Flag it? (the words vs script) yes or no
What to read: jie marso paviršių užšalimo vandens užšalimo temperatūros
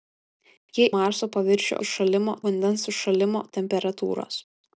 no